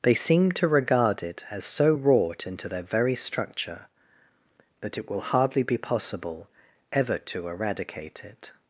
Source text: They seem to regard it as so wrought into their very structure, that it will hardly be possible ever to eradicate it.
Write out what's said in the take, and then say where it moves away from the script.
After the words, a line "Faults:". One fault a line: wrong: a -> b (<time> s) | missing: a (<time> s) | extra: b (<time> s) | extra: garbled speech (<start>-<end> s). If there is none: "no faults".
They seem to regard it as so wrought into their very structure, that it will hardly be possible ever to eradicate it.
Faults:
no faults